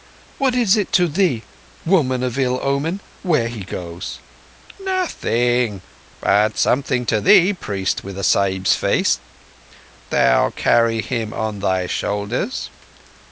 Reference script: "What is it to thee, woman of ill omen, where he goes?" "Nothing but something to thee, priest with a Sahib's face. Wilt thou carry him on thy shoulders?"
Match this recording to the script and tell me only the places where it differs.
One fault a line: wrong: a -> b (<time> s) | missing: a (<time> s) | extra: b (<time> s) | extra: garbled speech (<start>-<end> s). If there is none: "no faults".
missing: Wilt (9.2 s)